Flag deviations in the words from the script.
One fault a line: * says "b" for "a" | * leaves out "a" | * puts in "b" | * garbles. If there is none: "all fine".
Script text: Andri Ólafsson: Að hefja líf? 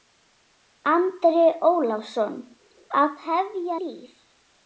all fine